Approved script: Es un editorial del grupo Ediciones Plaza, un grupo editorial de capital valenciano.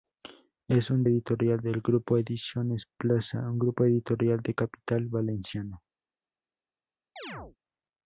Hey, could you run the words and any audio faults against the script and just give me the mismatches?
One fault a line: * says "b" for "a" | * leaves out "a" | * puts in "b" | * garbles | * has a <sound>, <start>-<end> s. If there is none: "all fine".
* has a chirp, 7.2-7.6 s